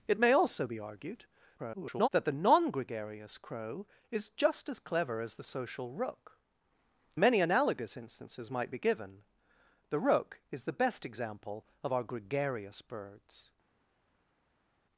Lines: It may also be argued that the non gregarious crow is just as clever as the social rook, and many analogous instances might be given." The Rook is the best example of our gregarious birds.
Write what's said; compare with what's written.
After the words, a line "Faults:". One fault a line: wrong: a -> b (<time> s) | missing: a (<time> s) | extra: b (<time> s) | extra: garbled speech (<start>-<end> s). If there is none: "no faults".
It may also be argued [garbled] that the non gregarious crow is just as clever as the social rook, many analogous instances might be given." The Rook is the best example of our gregarious birds.
Faults:
extra: garbled speech (1.6-2.1 s)
missing: and (6.4 s)